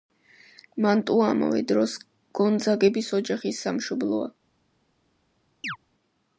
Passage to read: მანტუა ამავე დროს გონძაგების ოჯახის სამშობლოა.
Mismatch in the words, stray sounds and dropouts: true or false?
true